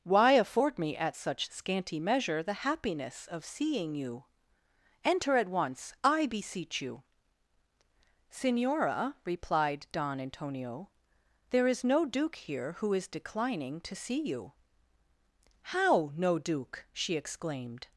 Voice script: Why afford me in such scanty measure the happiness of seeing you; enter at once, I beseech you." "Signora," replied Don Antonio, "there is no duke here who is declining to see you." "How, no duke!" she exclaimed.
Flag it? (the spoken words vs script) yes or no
yes